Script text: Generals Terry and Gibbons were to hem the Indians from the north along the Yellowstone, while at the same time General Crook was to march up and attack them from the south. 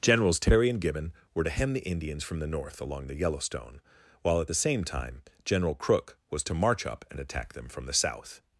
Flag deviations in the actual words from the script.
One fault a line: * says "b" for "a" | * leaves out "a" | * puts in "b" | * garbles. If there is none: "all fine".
* says "Gibbon" for "Gibbons"